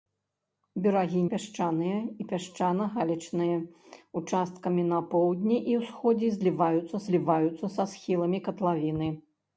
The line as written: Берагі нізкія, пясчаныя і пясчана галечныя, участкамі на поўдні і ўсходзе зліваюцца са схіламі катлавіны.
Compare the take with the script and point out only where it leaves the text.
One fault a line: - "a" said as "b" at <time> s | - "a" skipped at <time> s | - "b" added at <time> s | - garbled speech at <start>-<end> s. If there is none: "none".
- "нізкія" skipped at 1.2 s
- "зліваюцца" added at 7.1 s